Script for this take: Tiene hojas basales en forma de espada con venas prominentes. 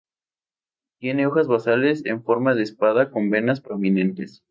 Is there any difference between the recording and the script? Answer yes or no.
no